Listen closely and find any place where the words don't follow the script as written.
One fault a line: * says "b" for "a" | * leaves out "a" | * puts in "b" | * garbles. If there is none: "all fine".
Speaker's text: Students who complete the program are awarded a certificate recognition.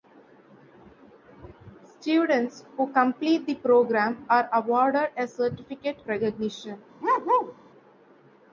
all fine